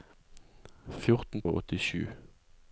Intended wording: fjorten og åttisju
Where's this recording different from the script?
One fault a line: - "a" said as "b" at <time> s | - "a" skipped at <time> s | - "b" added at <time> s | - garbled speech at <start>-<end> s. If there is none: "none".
none